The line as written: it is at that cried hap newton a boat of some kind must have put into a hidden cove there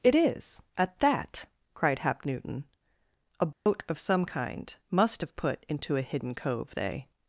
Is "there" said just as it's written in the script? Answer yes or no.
no